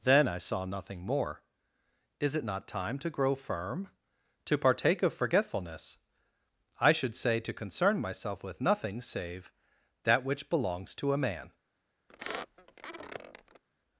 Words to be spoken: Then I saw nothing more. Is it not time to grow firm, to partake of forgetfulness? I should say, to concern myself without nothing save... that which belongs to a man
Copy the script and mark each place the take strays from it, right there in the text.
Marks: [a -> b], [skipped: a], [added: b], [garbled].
Then I saw nothing more. Is it not time to grow firm, to partake of forgetfulness? I should say, to concern myself [without -> with] nothing save... that which belongs to a man